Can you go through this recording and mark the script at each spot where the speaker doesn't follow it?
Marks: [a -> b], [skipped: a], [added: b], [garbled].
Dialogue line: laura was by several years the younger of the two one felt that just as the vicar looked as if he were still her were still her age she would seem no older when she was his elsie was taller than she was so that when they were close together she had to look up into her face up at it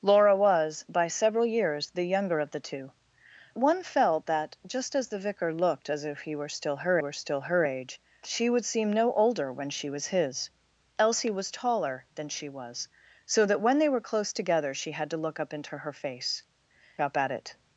laura was by several years the younger of the two one felt that just as the vicar looked as if he were still her were still her age she would seem no older when she was his elsie was taller than she was so that when they were close together she had to look up into her face up at it